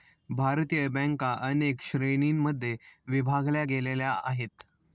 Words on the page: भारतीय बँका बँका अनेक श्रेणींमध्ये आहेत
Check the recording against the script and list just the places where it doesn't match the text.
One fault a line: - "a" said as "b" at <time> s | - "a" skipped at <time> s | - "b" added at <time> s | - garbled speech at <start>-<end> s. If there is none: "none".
- "बँका" skipped at 1.3 s
- "विभागल्या गेलेल्या" added at 3.1 s